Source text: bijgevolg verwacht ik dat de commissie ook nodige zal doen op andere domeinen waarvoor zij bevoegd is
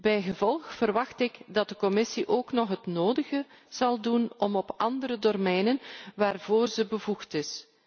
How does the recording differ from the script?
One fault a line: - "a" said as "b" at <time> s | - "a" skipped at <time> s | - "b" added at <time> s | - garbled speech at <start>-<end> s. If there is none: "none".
- "nog het" added at 2.5 s